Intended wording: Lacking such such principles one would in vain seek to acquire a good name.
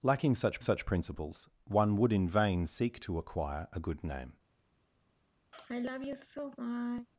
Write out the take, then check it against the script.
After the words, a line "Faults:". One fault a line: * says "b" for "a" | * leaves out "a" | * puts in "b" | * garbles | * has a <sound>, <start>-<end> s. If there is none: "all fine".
Lacking such such principles one would in vain seek to acquire a good name.
Faults:
* has a sigh, 5.5-7.1 s